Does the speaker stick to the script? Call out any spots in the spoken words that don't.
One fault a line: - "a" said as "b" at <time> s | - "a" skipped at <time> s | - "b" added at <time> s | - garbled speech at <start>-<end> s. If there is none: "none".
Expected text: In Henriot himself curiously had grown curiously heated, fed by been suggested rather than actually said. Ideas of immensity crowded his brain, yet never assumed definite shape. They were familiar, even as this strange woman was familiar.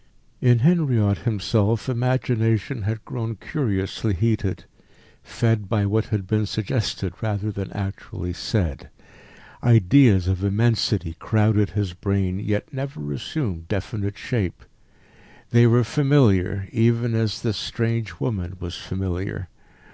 - "curiously" said as "imagination" at 1.9 s
- "what had" added at 5.8 s